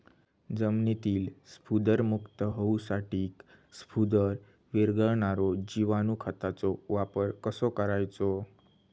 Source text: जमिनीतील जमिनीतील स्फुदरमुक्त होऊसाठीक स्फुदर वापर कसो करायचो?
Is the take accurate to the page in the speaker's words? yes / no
no